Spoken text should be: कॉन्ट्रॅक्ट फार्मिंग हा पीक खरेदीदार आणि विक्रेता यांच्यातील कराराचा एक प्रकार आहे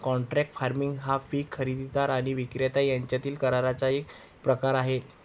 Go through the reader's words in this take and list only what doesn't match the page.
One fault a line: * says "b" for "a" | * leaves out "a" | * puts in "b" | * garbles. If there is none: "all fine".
all fine